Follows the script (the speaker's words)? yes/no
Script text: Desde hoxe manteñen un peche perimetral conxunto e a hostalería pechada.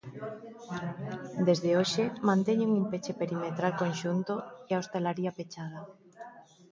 yes